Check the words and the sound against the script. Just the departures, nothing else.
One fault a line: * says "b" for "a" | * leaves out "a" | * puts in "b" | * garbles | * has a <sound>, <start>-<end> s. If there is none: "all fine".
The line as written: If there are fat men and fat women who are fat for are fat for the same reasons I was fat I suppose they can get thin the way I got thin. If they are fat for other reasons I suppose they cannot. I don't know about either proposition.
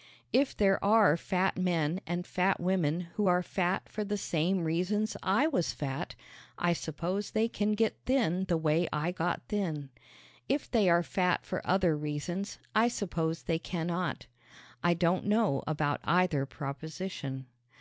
* leaves out "are fat for"